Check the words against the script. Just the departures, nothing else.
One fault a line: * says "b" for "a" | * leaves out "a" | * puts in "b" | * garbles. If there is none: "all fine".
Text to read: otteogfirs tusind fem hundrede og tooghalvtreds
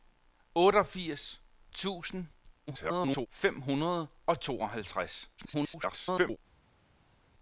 * garbles
* garbles